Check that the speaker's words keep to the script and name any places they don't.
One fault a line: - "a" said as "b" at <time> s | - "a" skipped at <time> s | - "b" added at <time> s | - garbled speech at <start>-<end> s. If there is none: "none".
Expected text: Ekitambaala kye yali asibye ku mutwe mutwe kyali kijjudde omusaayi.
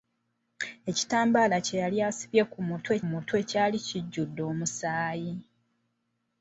none